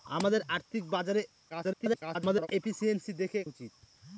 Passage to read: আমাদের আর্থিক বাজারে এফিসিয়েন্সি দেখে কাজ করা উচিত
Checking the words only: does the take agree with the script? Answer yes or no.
no